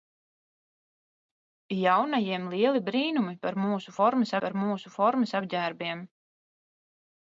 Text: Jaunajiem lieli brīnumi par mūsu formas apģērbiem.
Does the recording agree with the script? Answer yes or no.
no